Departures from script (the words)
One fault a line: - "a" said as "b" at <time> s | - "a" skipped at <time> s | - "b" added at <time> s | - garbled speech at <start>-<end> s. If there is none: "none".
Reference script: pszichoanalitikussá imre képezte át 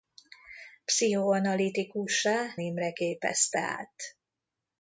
none